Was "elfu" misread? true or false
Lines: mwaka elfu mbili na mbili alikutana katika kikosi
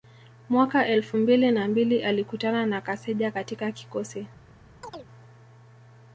false